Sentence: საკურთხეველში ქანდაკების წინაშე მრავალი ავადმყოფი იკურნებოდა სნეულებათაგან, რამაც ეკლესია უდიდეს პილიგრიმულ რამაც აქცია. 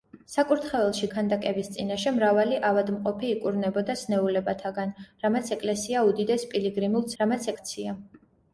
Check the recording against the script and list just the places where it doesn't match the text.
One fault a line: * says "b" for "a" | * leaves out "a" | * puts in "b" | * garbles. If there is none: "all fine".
all fine